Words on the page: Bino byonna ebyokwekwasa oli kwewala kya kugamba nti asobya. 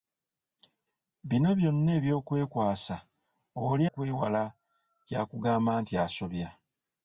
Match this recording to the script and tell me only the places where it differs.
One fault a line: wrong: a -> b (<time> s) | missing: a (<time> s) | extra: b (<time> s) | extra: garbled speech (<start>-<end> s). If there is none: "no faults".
no faults